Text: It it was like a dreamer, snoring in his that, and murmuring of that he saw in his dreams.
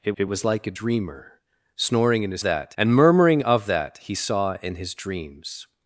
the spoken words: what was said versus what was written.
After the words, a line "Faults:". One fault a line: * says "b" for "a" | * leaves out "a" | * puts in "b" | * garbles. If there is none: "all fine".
It it was like a dreamer, snoring in his that, and murmuring of that he saw in his dreams.
Faults:
all fine